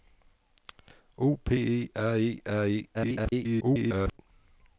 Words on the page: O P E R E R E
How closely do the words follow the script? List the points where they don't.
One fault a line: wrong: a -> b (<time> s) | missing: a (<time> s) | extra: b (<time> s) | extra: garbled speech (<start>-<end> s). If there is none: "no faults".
extra: garbled speech (2.9-4.2 s)